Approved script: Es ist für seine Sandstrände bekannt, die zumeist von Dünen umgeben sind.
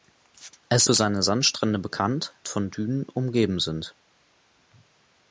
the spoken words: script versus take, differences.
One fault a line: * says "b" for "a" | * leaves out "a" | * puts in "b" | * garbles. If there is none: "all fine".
* leaves out "ist"
* leaves out "die zumeist"